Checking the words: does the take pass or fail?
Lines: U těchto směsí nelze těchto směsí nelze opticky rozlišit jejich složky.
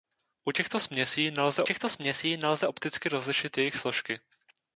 pass